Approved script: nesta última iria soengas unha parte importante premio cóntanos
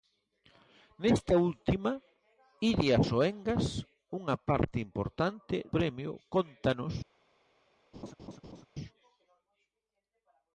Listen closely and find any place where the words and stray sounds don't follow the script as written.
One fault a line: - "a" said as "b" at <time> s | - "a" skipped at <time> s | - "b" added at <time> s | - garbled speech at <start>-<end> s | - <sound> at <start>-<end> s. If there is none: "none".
- laugh at 7.9-8.7 s